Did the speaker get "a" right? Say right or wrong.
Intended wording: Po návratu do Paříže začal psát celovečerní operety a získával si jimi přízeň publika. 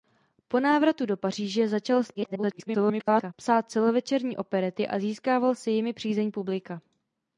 right